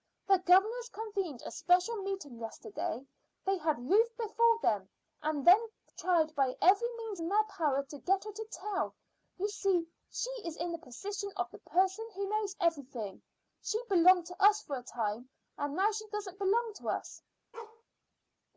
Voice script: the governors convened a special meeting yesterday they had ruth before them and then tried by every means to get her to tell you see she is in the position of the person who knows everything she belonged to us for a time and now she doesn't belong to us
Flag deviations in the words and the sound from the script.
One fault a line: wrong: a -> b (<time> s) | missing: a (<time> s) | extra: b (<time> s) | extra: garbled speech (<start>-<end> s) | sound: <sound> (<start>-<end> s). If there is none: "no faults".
extra: in their power (7.2 s)
sound: bark (17.5-17.8 s)